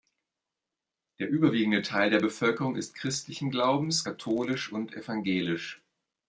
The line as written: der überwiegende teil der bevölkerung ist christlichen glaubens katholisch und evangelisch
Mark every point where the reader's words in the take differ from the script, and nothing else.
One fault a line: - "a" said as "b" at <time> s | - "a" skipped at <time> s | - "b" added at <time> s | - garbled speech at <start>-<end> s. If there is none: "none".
none